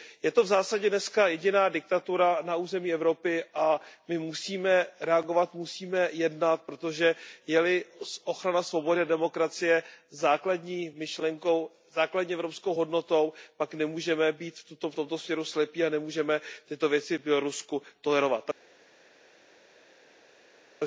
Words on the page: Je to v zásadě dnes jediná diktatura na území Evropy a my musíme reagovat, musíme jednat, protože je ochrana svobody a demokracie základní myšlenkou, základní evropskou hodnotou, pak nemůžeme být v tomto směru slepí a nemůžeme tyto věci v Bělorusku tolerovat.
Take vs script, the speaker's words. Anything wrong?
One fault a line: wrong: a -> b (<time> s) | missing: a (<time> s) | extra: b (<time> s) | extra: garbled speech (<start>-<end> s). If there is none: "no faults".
extra: li (7.6 s)